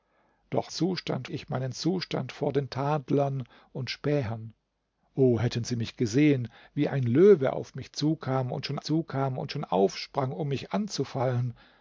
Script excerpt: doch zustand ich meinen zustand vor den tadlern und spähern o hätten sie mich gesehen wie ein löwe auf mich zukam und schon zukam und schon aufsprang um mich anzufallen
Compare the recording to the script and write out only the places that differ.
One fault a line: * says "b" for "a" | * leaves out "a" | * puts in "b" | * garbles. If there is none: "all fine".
all fine